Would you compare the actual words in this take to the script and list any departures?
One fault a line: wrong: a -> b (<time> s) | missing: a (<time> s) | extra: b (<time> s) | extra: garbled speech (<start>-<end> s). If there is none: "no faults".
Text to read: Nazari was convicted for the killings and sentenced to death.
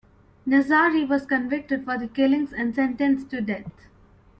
no faults